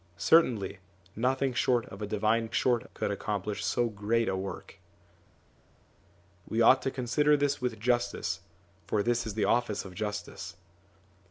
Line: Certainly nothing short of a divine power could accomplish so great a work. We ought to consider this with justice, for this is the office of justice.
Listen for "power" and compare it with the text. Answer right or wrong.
wrong